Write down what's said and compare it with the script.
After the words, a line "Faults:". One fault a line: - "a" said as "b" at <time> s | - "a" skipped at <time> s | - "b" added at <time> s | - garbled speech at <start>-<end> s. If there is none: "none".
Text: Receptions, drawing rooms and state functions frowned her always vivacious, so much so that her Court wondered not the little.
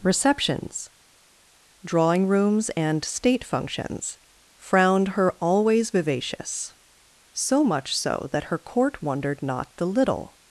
Receptions, drawing rooms and state functions frowned her always vivacious, so much so that her Court wondered not the little.
Faults:
none